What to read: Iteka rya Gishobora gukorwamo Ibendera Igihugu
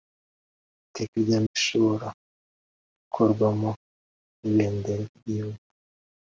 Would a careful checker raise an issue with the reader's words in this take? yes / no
no